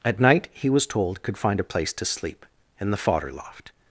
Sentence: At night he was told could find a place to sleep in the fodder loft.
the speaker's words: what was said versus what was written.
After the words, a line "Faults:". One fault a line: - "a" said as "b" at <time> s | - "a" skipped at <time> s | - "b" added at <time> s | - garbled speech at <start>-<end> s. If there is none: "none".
At night he was told could find a place to sleep in the fodder loft.
Faults:
none